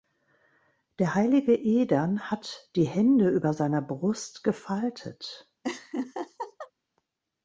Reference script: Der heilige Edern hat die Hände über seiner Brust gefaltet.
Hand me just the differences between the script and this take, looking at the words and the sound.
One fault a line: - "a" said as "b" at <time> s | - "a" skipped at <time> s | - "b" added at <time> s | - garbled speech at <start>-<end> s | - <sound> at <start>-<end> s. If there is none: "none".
- laugh at 5.6-6.7 s